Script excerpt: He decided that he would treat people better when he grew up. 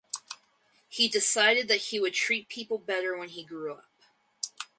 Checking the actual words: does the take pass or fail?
pass